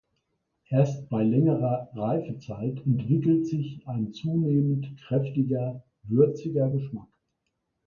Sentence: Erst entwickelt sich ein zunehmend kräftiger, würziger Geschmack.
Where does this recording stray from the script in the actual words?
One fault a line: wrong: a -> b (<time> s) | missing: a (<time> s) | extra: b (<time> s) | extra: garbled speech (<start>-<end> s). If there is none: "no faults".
extra: bei längerer Reifezeit (1.1 s)